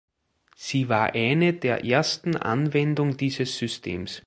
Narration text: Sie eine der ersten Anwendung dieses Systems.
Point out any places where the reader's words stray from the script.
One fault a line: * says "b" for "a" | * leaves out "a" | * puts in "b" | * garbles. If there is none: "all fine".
* puts in "war"